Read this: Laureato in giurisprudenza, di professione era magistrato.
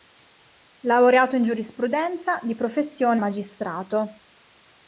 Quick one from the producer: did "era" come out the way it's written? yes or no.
no